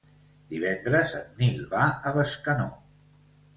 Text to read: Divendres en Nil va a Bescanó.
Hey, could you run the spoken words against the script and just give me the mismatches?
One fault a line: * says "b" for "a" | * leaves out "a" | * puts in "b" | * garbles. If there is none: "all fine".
all fine